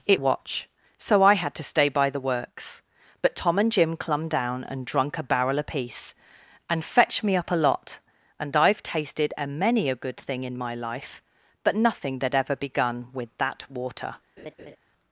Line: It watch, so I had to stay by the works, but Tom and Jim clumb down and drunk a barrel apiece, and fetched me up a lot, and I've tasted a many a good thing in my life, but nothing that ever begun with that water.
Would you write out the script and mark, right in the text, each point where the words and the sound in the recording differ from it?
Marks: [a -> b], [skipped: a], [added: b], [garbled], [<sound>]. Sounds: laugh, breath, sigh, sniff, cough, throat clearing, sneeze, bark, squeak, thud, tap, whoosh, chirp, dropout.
It watch, so I had to stay by the works, but Tom and Jim clumb down and drunk a barrel apiece, and fetched me up a lot, and I've tasted a many a good thing in my life, but nothing that ever begun with that water. [laugh]